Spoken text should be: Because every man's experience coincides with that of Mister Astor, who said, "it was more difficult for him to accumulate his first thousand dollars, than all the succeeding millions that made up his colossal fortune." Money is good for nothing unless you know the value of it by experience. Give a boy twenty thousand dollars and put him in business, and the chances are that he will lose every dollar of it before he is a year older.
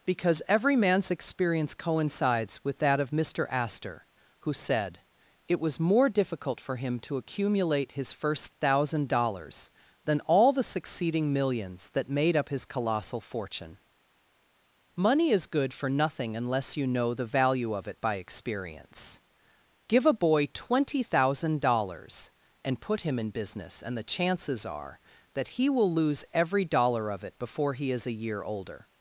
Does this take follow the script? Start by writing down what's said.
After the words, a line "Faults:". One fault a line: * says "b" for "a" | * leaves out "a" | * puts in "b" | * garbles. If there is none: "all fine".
Because every man's experience coincides with that of Mister Astor, who said, "it was more difficult for him to accumulate his first thousand dollars, than all the succeeding millions that made up his colossal fortune." Money is good for nothing unless you know the value of it by experience. Give a boy twenty thousand dollars and put him in business, and the chances are that he will lose every dollar of it before he is a year older.
Faults:
all fine